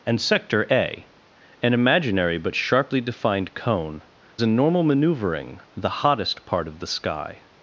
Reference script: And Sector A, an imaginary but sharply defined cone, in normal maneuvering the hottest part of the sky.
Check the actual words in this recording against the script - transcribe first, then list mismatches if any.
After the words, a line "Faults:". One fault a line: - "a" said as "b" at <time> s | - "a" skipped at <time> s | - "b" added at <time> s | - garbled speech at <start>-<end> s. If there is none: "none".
And Sector A, an imaginary but sharply defined cone, in normal maneuvering the hottest part of the sky.
Faults:
none